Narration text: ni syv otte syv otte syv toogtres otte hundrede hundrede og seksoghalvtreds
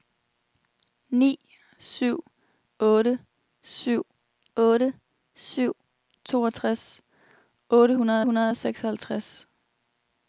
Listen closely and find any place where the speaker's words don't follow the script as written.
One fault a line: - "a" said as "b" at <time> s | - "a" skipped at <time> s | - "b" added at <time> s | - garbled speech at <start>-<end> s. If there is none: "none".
none